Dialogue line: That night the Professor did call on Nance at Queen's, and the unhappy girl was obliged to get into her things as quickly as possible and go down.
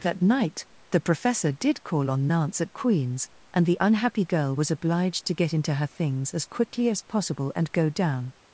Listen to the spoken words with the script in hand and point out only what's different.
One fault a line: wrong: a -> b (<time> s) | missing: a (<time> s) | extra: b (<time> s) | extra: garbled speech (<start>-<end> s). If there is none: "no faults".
no faults